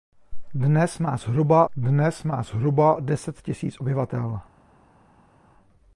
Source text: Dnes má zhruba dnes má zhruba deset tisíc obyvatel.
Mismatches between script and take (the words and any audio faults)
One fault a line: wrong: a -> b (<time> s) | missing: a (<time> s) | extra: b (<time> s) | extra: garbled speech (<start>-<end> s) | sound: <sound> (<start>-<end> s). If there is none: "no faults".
no faults